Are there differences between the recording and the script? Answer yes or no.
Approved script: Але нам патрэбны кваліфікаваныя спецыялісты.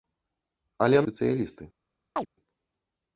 yes